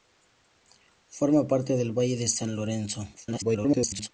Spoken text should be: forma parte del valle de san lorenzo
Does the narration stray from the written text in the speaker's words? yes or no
yes